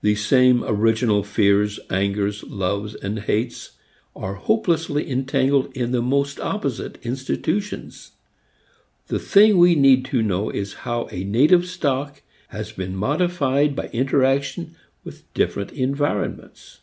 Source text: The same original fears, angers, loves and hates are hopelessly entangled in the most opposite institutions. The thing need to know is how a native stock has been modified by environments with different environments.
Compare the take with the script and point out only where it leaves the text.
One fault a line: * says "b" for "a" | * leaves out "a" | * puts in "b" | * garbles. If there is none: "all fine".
* puts in "we"
* says "interaction" for "environments"